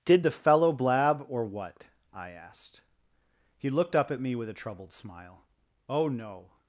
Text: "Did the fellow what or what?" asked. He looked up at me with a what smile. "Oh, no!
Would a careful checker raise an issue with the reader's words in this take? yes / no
yes